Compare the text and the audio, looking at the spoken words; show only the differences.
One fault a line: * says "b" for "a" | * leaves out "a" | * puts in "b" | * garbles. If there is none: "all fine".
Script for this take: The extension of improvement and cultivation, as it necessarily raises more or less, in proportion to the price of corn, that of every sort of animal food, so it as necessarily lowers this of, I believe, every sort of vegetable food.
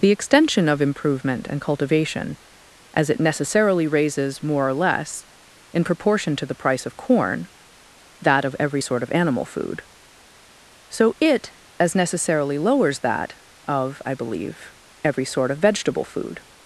* says "that" for "this"